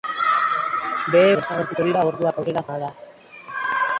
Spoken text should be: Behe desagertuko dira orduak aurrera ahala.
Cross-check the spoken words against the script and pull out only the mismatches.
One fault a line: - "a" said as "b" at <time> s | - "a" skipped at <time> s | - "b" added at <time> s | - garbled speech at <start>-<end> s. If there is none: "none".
none